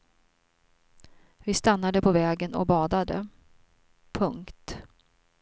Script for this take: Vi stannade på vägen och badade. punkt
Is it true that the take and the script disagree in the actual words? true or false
false